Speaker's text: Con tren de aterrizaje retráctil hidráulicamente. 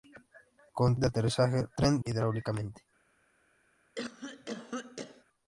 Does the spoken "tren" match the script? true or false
false